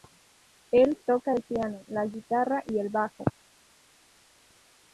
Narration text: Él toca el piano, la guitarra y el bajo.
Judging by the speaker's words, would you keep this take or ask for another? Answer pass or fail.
pass